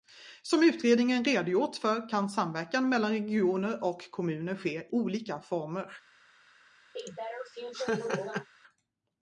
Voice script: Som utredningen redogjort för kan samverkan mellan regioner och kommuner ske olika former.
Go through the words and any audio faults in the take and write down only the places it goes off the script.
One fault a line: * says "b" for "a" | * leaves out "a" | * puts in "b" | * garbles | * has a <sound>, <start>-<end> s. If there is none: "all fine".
* has a laugh, 7.0-8.5 s